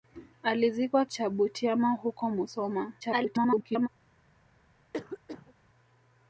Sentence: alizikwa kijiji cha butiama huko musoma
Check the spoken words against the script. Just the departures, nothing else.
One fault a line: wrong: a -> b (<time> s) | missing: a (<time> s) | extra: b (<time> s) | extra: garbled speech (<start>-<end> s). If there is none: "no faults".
missing: kijiji (1.1 s)
extra: garbled speech (3.0-3.9 s)